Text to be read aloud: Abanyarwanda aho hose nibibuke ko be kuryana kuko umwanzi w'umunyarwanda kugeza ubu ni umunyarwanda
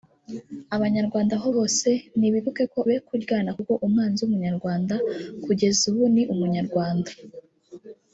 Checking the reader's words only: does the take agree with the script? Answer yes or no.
yes